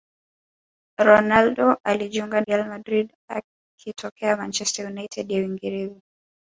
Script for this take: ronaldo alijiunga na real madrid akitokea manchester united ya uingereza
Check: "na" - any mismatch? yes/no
yes